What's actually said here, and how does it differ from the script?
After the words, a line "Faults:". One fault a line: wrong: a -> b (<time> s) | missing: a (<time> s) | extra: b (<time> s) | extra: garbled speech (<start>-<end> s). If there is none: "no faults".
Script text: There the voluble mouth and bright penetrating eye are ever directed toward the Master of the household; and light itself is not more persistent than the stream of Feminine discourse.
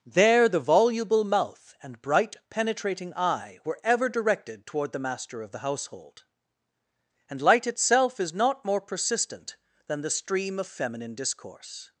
There the voluble mouth and bright penetrating eye were ever directed toward the Master of the household; and light itself is not more persistent than the stream of Feminine discourse.
Faults:
wrong: are -> were (3.6 s)